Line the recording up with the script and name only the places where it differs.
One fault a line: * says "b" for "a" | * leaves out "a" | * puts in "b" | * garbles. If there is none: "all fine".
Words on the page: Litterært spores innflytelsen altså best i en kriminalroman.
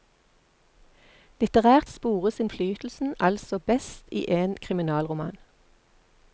all fine